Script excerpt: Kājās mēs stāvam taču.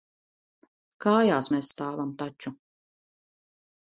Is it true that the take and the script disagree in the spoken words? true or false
false